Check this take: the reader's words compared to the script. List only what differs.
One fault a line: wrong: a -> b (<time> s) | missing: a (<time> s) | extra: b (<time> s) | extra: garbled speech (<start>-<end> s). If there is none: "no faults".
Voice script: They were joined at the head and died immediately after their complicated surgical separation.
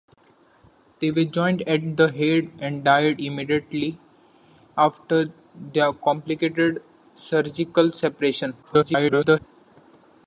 extra: garbled speech (8.6-9.4 s)